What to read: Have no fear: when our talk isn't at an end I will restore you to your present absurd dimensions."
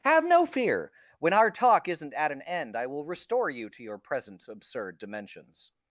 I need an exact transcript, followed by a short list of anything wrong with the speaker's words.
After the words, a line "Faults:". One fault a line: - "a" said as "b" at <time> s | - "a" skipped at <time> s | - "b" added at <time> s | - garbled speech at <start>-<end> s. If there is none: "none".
Have no fear: when our talk isn't at an end I will restore you to your present absurd dimensions."
Faults:
none